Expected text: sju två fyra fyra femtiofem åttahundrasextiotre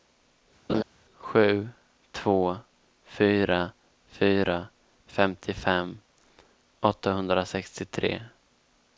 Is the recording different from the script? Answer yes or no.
no